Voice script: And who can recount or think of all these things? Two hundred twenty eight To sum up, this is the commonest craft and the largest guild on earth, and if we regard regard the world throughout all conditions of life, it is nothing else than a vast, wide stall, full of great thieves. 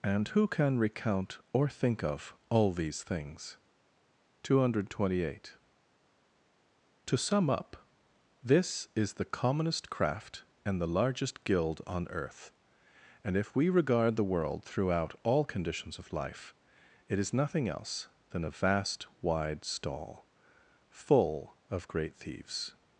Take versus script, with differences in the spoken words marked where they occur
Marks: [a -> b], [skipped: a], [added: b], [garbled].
And who can recount or think of all these things? Two hundred twenty eight To sum up, this is the commonest craft and the largest guild on earth, and if we regard [skipped: regard] the world throughout all conditions of life, it is nothing else than a vast, wide stall, full of great thieves.